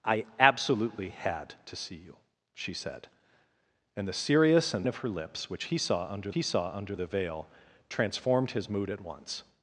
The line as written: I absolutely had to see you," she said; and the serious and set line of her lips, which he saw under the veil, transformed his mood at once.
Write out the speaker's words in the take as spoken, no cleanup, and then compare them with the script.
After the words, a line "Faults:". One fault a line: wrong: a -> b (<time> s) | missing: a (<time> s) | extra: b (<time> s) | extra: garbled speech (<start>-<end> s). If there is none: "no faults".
I absolutely had to see you," she said; and the serious and of her lips, which he saw under he saw under the veil, transformed his mood at once.
Faults:
missing: set line (4.9 s)
extra: he saw under (6.3 s)